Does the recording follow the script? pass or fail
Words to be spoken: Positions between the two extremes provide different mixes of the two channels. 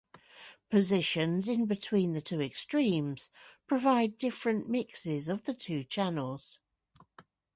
fail